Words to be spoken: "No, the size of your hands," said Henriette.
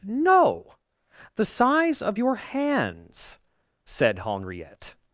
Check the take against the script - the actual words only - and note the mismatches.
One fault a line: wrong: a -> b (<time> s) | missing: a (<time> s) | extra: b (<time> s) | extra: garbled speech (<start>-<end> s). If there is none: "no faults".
no faults